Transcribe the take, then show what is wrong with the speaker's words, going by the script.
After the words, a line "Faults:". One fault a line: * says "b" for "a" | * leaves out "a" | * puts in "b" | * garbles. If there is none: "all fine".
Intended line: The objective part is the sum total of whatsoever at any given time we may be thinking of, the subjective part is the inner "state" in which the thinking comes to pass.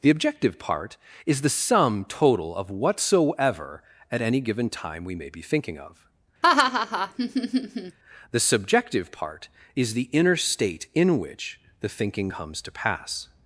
The objective part is the sum total of whatsoever at any given time we may be thinking of, the subjective part is the inner "state" in which the thinking comes to pass.
Faults:
all fine